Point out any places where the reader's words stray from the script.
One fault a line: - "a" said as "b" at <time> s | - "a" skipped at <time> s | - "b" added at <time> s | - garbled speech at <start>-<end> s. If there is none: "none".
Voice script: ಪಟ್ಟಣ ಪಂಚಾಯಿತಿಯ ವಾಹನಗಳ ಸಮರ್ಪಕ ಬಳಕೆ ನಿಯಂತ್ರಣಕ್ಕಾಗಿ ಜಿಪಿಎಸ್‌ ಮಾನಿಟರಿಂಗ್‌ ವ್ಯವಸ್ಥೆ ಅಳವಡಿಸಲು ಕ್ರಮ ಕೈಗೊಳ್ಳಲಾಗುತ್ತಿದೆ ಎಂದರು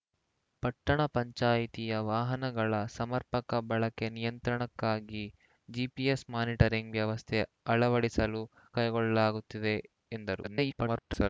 - "ಕ್ರಮ" skipped at 8.4 s
- garbled speech at 10.4-11.3 s